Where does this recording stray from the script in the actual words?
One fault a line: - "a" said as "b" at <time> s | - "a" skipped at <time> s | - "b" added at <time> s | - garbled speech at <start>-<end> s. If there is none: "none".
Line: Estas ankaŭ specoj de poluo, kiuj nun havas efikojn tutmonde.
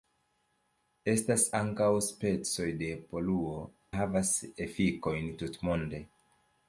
- "kiuj nun" skipped at 3.6 s